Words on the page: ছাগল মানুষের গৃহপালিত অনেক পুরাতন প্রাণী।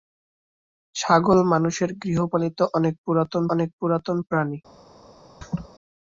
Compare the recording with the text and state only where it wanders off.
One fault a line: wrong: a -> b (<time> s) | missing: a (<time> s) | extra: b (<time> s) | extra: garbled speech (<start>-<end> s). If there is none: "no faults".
extra: অনেক পুরাতন (3.5 s)